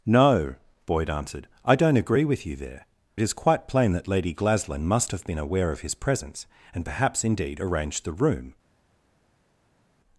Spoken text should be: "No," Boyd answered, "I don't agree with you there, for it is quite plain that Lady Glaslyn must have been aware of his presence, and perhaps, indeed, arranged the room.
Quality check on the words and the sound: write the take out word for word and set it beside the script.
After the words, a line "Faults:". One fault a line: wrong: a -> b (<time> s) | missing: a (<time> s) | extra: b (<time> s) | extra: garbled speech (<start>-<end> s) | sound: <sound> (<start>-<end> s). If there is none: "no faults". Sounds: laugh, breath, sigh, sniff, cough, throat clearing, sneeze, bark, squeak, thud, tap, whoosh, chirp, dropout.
"No," Boyd answered, "I don't agree with you there, it is quite plain that Lady Glaslyn must have been aware of his presence, and perhaps, indeed, arranged the room.
Faults:
missing: for (2.9 s)